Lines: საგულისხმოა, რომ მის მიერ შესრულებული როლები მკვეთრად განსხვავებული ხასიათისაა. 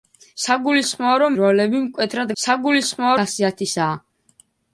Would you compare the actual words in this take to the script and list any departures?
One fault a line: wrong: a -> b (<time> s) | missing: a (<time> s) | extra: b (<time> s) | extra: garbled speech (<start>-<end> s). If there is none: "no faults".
missing: მის მიერ შესრულებული (1.4 s)
wrong: განსხვავებული -> საგულისხმოა (2.4 s)